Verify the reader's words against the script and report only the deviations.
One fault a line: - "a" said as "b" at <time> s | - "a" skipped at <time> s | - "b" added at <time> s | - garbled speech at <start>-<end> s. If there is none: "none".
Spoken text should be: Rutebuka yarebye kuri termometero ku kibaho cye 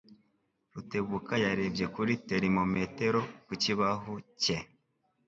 none